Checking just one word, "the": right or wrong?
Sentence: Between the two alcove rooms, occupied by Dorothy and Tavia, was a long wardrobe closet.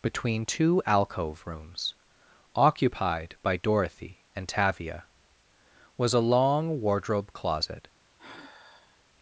wrong